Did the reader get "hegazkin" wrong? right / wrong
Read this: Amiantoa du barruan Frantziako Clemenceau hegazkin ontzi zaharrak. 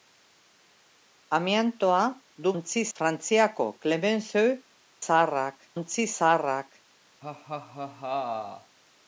wrong